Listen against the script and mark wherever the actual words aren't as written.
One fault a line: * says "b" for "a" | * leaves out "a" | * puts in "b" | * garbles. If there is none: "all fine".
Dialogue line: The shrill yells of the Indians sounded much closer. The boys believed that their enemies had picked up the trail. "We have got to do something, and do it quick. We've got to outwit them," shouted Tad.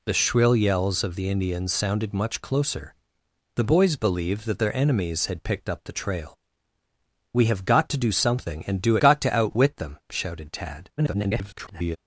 * leaves out "it quick We've"
* garbles